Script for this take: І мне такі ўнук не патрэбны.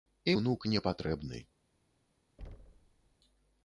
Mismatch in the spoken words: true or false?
true